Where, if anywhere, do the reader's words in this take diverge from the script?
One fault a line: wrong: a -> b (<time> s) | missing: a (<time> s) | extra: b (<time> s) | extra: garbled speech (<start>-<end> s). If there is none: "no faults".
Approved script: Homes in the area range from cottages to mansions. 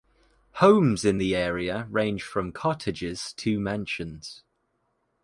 no faults